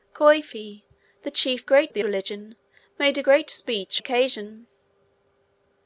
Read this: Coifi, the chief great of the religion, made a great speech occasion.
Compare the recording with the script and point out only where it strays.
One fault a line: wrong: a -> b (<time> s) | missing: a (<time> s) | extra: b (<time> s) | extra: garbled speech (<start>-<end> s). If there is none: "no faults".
no faults